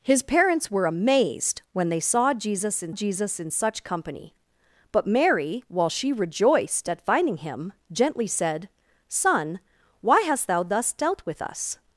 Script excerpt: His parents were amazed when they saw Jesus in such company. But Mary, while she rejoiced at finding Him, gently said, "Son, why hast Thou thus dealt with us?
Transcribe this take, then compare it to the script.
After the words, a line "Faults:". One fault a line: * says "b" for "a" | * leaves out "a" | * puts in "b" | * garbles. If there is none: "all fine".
His parents were amazed when they saw Jesus in Jesus in such company. But Mary, while she rejoiced at finding Him, gently said, "Son, why hast Thou thus dealt with us?
Faults:
* puts in "Jesus in"